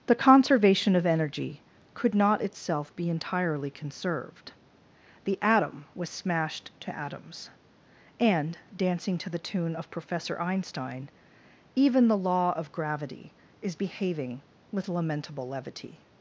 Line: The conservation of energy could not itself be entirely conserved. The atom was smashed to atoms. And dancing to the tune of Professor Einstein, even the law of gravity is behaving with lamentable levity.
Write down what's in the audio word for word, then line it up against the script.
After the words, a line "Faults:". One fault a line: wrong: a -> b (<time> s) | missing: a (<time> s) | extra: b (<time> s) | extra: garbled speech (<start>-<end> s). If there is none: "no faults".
The conservation of energy could not itself be entirely conserved. The atom was smashed to atoms. And dancing to the tune of Professor Einstein, even the law of gravity is behaving with lamentable levity.
Faults:
no faults